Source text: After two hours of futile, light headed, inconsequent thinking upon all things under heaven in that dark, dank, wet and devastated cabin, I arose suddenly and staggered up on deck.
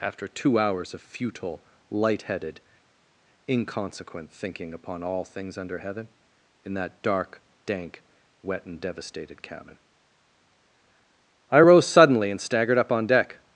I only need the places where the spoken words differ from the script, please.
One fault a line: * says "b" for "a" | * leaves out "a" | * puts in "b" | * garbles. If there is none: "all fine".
* says "rose" for "arose"